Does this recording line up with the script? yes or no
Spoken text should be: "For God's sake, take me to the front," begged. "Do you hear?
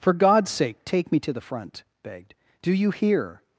yes